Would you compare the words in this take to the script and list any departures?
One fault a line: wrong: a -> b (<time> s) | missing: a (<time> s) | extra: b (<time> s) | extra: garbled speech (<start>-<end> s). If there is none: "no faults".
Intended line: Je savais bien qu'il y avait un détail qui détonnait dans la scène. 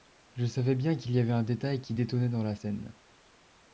no faults